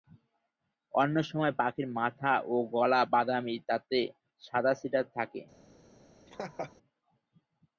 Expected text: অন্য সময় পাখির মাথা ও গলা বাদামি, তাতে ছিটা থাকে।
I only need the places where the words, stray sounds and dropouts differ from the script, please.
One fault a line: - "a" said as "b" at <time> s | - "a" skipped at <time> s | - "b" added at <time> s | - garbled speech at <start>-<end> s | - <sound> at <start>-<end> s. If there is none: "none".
- "সাদা" added at 4.4 s
- laugh at 6.3-6.7 s